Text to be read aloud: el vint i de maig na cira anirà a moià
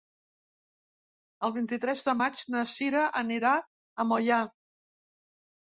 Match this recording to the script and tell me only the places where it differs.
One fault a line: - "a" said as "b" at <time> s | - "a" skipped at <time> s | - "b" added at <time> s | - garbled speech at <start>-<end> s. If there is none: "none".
- "tres" added at 1.9 s